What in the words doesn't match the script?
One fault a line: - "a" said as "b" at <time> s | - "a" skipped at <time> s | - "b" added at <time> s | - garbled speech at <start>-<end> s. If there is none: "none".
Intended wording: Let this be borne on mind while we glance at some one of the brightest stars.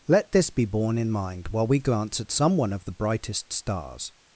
- "on" said as "in" at 1.0 s